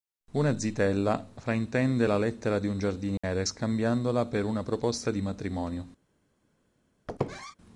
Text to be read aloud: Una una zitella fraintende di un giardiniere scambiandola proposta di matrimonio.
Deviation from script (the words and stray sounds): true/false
true